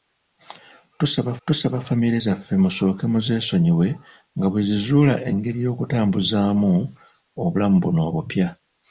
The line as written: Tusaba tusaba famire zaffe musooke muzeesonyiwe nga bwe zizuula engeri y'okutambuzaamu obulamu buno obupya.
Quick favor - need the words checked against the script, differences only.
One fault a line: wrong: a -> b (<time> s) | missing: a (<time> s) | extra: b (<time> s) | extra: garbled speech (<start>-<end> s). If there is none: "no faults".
no faults